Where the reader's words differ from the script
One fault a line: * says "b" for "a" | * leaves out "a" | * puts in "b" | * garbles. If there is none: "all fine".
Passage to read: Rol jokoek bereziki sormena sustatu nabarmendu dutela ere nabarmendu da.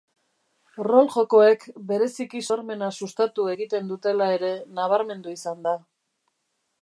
* says "egiten" for "nabarmendu"
* puts in "izan"